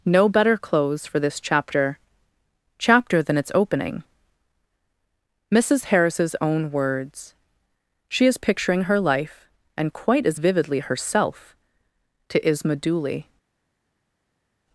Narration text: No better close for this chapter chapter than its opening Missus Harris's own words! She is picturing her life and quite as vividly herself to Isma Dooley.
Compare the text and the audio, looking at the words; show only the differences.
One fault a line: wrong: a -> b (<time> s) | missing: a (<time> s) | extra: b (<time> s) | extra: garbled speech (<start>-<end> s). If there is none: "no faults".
no faults